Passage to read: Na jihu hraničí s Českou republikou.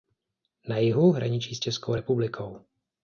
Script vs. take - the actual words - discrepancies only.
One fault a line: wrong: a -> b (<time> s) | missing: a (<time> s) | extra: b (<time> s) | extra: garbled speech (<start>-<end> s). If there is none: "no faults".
no faults